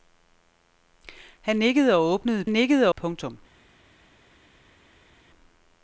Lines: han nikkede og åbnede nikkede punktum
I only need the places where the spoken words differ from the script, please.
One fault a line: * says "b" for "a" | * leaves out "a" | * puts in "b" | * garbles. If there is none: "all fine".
all fine